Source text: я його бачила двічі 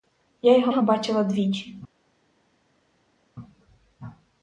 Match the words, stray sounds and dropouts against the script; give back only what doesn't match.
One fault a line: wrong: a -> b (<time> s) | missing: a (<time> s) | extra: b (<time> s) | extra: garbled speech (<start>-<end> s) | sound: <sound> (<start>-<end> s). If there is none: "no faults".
extra: його (0.7 s)